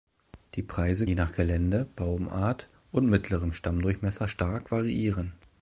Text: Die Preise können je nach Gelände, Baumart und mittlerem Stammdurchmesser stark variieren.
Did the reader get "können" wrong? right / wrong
wrong